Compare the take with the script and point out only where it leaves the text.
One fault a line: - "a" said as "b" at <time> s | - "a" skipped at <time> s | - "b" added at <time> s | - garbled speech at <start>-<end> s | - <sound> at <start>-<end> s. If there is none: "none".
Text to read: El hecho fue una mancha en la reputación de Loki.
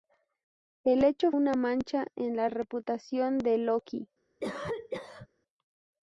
- "fue" skipped at 1.3 s
- cough at 4.4-5.3 s